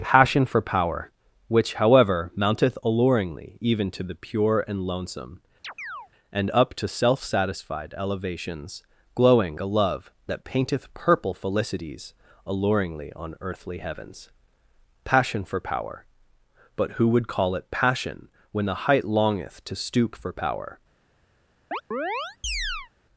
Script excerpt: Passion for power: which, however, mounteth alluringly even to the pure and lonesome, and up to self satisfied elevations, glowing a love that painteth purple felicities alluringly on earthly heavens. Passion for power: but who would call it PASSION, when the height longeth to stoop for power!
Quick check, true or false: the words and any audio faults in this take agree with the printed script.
false